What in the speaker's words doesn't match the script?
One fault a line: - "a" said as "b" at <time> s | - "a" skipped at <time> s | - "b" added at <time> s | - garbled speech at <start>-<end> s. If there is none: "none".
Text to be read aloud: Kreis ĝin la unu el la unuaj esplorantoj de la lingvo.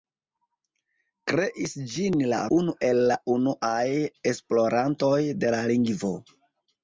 none